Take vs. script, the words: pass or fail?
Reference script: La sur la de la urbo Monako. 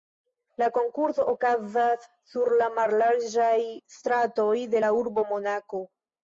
fail